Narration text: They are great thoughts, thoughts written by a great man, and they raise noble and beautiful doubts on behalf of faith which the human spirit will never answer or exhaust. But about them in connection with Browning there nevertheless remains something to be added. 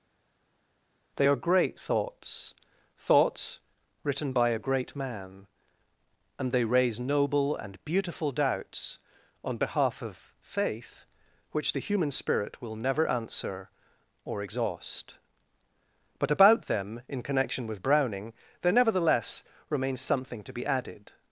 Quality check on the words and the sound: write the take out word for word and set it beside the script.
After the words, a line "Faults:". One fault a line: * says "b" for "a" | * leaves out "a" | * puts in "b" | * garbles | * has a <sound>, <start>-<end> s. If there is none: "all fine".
They are great thoughts, thoughts written by a great man, and they raise noble and beautiful doubts on behalf of faith which the human spirit will never answer or exhaust. But about them in connection with Browning there nevertheless remains something to be added.
Faults:
all fine